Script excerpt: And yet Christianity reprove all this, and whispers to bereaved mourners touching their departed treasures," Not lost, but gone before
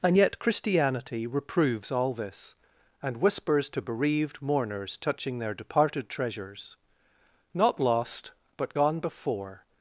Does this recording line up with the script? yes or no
no